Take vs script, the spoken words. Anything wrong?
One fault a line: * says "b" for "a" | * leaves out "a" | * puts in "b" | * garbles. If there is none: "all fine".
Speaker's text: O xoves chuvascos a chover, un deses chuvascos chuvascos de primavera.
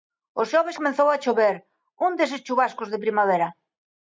* says "comezou" for "chuvascos"
* leaves out "chuvascos"